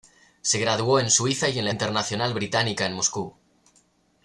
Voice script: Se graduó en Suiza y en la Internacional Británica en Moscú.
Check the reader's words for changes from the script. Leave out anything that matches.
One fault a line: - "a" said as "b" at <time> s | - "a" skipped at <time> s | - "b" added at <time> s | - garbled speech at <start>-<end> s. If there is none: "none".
none